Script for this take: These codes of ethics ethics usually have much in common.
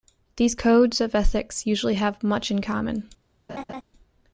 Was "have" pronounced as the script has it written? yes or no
yes